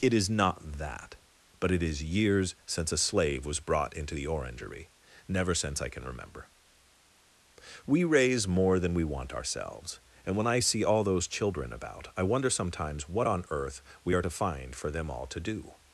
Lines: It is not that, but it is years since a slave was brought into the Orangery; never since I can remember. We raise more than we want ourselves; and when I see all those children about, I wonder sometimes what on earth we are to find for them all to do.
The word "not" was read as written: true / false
true